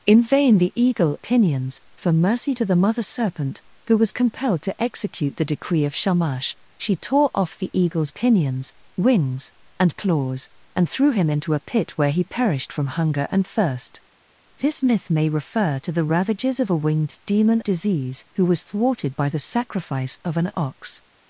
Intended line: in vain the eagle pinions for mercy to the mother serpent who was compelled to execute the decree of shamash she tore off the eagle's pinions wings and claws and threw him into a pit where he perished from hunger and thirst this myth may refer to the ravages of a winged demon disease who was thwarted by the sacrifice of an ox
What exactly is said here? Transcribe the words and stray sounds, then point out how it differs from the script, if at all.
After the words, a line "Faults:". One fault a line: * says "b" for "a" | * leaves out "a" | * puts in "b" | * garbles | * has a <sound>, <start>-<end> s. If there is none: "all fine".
in vain the eagle pinions for mercy to the mother serpent who was compelled to execute the decree of shamash she tore off the eagle's pinions wings and claws and threw him into a pit where he perished from hunger and thirst this myth may refer to the ravages of a winged demon disease who was thwarted by the sacrifice of an ox
Faults:
all fine